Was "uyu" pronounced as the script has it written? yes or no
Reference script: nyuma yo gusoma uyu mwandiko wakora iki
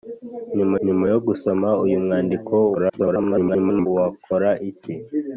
yes